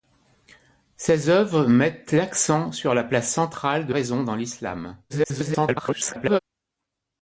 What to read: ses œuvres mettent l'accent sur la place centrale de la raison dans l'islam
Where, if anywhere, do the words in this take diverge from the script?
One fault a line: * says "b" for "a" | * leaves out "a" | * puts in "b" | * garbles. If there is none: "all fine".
* leaves out "la"
* garbles